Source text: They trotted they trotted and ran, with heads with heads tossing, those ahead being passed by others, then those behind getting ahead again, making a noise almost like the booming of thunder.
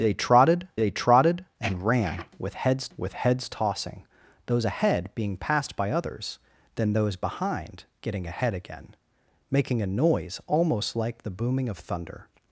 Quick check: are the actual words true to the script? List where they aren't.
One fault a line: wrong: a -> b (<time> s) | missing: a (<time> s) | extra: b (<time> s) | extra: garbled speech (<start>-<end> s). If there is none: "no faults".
no faults